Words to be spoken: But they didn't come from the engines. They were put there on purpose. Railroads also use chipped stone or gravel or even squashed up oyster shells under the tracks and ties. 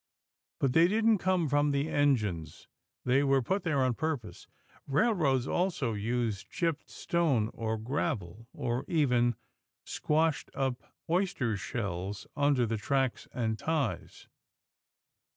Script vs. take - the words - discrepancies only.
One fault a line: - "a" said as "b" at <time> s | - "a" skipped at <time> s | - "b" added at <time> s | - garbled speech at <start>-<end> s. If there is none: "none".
none